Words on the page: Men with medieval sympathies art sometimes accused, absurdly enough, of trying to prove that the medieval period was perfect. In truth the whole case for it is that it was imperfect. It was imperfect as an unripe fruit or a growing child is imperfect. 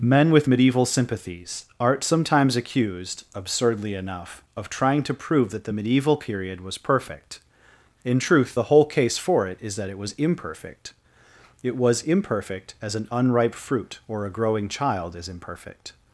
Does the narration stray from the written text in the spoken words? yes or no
no